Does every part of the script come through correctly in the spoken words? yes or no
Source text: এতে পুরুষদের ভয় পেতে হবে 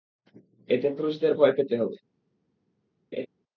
yes